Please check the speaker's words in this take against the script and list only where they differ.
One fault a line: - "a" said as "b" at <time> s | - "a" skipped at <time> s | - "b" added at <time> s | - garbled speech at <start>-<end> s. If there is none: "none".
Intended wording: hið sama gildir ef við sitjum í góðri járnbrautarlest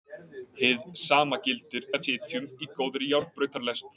- "við" skipped at 2.1 s